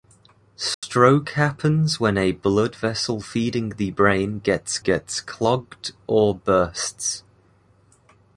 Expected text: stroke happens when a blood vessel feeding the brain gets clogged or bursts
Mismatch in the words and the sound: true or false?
true